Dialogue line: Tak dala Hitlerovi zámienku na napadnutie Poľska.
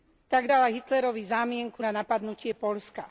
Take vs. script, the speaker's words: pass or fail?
pass